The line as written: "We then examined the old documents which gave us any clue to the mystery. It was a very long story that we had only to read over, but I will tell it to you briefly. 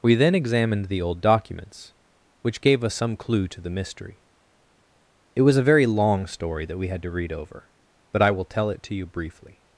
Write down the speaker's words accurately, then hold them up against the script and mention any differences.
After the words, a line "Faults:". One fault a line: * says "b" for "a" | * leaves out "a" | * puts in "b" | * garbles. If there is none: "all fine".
"We then examined the old documents which gave us some clue to the mystery. It was a very long story that we had to read over, but I will tell it to you briefly.
Faults:
* says "some" for "any"
* leaves out "only"